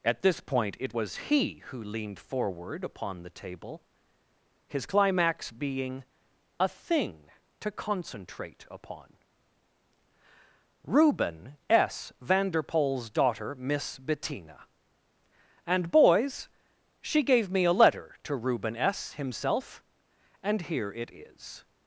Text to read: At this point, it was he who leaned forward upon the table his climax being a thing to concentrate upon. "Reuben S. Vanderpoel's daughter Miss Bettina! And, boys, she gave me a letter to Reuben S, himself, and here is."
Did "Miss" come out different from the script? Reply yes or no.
no